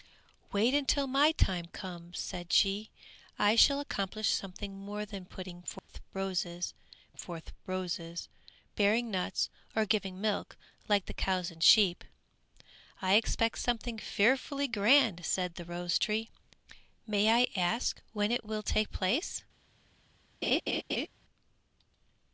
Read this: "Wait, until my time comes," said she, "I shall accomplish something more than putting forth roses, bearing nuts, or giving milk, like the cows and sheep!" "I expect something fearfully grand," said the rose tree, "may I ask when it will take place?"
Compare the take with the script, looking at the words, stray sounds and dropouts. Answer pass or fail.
fail